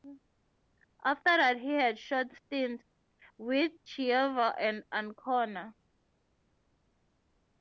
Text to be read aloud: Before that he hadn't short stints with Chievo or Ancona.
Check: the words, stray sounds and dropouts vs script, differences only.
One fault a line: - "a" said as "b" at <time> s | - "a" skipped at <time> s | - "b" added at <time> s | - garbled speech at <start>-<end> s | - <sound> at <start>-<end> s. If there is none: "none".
- "Before" said as "After" at 1.1 s
- "hadn't" said as "had" at 1.7 s
- "or" said as "and" at 4.6 s